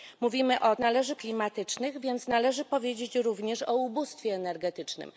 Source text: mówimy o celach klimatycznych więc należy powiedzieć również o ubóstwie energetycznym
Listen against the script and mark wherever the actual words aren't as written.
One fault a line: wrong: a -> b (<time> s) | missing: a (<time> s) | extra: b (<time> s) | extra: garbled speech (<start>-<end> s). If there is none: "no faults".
wrong: celach -> należy (0.8 s)